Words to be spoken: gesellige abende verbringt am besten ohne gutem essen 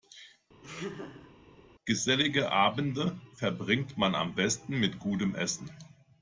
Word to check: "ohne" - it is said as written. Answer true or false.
false